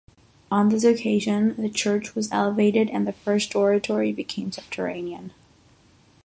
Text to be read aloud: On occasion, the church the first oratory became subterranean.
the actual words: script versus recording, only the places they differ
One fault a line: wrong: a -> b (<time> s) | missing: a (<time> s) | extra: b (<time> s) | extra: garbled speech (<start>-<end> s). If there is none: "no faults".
extra: this (0.7 s)
extra: was elevated and (2.1 s)